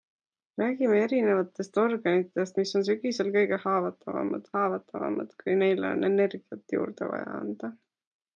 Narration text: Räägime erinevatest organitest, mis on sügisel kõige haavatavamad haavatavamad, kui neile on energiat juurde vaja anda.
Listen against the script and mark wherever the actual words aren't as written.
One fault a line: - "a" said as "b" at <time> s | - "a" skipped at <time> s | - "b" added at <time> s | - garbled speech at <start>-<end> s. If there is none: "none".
none